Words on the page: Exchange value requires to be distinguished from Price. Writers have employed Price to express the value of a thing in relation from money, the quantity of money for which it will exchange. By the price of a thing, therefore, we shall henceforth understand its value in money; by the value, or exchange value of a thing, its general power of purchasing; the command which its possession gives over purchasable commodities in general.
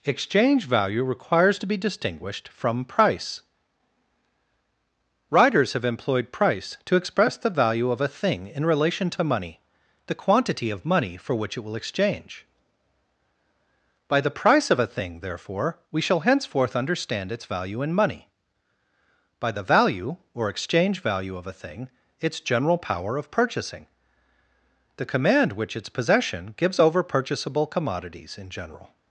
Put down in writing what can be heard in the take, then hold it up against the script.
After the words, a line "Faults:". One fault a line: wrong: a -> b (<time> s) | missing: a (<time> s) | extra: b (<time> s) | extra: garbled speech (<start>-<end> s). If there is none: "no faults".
Exchange value requires to be distinguished from Price. Writers have employed Price to express the value of a thing in relation to money, the quantity of money for which it will exchange. By the price of a thing, therefore, we shall henceforth understand its value in money; by the value, or exchange value of a thing, its general power of purchasing; the command which its possession gives over purchasable commodities in general.
Faults:
wrong: from -> to (9.1 s)